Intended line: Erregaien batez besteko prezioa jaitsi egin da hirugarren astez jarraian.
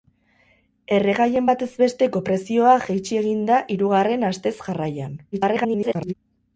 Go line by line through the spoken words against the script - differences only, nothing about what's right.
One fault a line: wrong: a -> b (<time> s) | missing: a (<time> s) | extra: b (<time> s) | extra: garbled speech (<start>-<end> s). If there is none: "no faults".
extra: garbled speech (5.3-6.1 s)